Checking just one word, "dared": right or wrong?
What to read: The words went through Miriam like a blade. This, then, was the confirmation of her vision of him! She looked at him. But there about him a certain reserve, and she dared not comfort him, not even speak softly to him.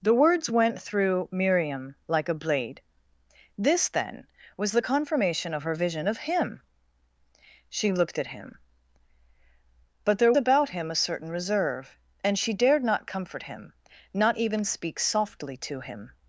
right